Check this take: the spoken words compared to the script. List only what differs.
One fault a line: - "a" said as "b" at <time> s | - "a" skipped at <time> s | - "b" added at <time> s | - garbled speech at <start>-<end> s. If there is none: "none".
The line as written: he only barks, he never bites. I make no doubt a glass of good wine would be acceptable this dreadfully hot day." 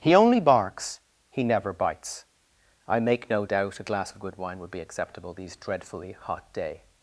- "this" said as "these" at 5.3 s